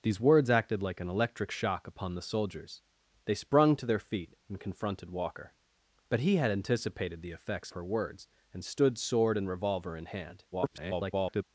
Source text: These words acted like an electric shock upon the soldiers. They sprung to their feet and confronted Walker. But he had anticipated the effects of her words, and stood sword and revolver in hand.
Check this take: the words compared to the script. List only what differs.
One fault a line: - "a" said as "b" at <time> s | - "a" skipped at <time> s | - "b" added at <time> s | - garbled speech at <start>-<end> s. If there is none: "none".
- "of" skipped at 7.7 s
- garbled speech at 10.5-11.4 s